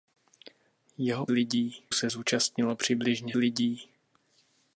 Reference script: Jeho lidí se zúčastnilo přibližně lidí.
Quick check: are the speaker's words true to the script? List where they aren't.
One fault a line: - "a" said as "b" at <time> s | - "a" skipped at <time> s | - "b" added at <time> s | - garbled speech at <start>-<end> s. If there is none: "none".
none